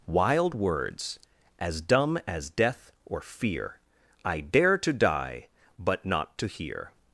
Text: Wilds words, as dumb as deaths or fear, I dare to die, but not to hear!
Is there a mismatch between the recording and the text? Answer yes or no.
yes